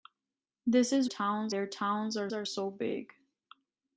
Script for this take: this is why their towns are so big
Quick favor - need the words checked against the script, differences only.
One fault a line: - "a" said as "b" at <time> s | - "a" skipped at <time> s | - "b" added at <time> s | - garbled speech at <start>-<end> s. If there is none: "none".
- "why" said as "towns" at 1.1 s
- "are" added at 2.3 s